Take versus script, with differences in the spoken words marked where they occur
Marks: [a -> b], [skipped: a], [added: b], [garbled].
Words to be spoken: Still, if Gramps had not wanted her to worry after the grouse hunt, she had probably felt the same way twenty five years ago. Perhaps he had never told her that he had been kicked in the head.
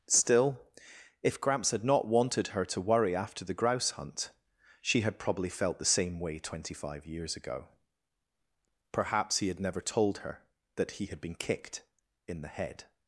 Still, if Gramps had not wanted her to worry after the grouse hunt, she had probably felt the same way twenty five years ago. Perhaps he had never told her that he had been kicked in the head.